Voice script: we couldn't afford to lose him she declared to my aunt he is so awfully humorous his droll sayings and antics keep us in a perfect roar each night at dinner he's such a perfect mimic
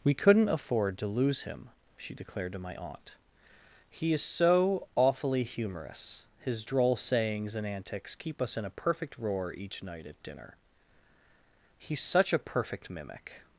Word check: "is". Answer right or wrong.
right